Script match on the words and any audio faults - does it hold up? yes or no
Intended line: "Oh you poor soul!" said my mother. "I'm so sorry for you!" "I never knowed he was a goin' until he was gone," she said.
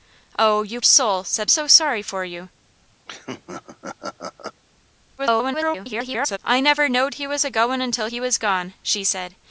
no